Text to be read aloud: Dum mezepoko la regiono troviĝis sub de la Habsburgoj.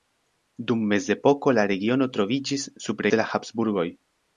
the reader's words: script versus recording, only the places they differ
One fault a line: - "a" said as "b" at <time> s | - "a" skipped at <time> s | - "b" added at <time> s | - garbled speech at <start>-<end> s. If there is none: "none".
none